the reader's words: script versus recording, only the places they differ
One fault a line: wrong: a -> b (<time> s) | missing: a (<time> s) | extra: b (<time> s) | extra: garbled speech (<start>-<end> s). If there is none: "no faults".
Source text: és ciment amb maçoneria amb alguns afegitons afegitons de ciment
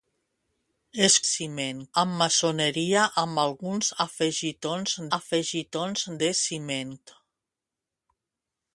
no faults